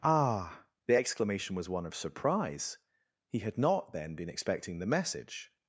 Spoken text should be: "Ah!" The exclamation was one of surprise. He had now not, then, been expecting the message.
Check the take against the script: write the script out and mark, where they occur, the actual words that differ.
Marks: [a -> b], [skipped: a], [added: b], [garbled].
"Ah!" The exclamation was one of surprise. He had [skipped: now] not, then, been expecting the message.